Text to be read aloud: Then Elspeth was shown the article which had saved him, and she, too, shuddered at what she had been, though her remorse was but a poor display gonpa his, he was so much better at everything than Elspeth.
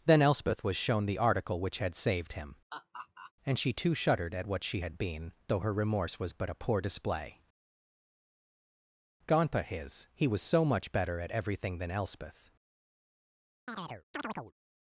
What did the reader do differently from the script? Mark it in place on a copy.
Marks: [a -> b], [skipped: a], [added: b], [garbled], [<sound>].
Then Elspeth was shown the article which had saved him, [laugh] and she, too, shuddered at what she had been, though her remorse was but a poor display gonpa his, he was so much better at everything than Elspeth. [chirp]